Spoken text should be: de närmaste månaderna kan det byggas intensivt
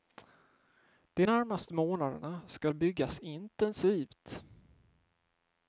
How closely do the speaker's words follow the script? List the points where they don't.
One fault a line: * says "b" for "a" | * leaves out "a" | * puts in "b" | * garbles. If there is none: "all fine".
* says "ska" for "kan"